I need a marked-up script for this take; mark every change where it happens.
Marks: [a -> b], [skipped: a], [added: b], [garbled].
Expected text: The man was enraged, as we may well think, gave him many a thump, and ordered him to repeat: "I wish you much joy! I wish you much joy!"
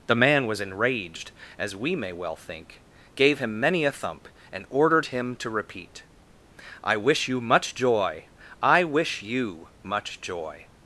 The man was enraged, as we may well think, gave him many a thump, and ordered him to repeat: "I wish you much joy! I wish you much joy!"